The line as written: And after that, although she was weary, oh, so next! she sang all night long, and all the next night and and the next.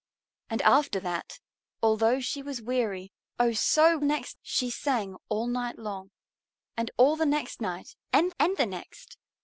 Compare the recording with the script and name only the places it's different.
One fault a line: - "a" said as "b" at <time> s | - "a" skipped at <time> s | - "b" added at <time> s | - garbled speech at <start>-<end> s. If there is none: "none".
none